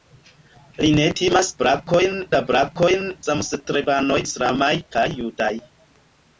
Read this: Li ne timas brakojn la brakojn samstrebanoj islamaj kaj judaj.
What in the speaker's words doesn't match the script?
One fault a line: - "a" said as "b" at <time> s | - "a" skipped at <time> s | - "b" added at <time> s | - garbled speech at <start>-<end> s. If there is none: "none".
none